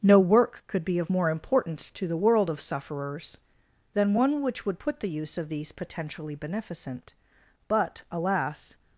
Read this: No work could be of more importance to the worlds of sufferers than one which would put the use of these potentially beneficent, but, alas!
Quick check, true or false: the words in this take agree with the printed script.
false